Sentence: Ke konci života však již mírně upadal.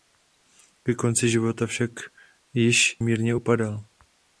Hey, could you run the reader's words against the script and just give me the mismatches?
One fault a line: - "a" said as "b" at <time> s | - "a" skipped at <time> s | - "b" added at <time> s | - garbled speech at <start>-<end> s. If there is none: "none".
none